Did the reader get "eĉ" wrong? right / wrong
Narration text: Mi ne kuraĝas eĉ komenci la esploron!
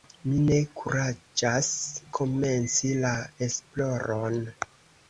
wrong